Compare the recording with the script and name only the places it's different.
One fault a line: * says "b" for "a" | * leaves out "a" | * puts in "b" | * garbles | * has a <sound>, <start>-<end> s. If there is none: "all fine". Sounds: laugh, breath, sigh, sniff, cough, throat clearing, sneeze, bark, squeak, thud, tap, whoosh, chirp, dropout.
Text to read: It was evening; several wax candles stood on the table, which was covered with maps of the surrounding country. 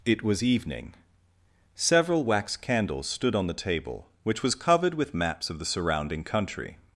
all fine